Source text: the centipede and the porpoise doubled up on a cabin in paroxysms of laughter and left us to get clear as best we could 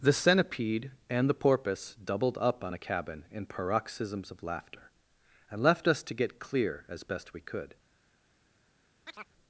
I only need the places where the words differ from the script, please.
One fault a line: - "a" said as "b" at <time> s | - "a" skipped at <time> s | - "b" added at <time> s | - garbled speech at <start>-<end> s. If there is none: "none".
none